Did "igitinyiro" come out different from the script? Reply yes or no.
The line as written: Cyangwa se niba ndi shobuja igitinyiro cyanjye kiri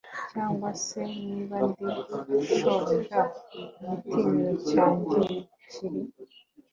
no